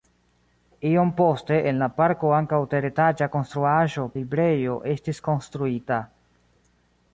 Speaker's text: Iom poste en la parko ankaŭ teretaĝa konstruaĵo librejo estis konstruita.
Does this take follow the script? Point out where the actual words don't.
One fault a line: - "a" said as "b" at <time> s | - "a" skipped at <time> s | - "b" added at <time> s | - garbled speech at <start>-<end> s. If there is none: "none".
none